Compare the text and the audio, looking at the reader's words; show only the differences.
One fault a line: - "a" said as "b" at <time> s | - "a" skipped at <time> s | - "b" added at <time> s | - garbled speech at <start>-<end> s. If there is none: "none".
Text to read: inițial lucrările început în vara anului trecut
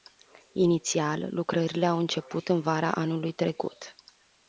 - "au" added at 1.9 s